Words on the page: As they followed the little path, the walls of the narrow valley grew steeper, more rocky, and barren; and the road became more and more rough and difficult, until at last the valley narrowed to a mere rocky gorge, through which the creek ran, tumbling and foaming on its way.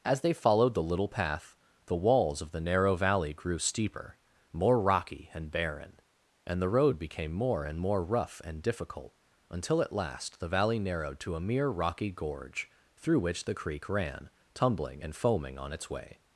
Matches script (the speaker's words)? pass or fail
pass